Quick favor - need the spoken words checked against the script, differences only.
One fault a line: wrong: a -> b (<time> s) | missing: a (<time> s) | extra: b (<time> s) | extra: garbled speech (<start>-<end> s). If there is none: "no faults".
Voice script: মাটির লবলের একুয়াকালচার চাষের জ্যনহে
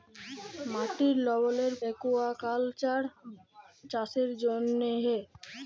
no faults